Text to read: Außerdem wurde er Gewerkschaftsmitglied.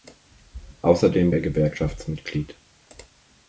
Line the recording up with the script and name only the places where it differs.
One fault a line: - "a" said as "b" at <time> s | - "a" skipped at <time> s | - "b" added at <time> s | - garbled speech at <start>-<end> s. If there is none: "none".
- "wurde" skipped at 1.4 s